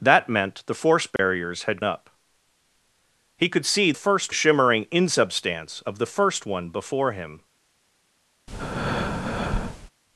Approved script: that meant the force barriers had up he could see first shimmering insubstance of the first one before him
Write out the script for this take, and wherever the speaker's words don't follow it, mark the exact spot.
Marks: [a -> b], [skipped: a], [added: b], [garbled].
that meant the force barriers had up he could see first shimmering insubstance of the first one before him